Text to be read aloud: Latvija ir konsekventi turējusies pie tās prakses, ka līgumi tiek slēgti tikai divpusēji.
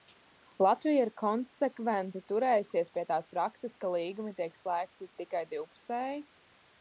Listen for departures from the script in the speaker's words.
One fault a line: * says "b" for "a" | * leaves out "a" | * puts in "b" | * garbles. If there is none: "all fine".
all fine